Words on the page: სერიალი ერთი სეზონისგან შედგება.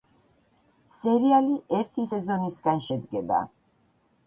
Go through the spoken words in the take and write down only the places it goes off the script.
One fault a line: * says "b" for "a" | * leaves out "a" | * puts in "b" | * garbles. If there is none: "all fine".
all fine